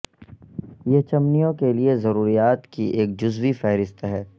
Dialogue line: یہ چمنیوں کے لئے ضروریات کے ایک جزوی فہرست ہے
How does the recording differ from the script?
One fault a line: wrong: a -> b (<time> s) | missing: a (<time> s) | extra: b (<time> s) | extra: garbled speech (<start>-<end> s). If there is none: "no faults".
wrong: کے -> کی (2.7 s)